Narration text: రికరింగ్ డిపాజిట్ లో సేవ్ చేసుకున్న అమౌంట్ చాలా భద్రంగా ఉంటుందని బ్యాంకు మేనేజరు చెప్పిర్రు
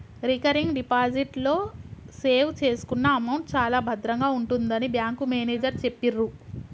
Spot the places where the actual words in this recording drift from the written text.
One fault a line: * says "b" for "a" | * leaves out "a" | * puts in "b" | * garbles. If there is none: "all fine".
all fine